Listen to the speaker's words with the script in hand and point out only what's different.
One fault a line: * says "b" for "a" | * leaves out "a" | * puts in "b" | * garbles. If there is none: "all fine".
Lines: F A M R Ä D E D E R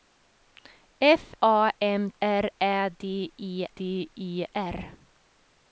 all fine